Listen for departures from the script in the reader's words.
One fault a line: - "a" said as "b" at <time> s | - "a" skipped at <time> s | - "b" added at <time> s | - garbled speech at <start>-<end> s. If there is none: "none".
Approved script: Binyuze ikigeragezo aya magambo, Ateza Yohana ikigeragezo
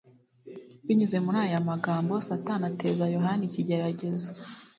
- "ikigeragezo" said as "muri" at 1.2 s
- "Satani" added at 2.3 s